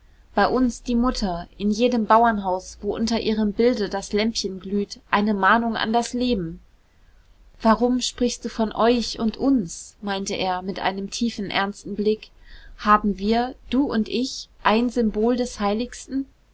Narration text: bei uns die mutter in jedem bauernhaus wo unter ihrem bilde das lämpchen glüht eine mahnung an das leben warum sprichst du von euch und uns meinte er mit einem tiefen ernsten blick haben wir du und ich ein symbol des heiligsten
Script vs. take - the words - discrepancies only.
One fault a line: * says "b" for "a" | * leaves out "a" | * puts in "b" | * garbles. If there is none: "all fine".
all fine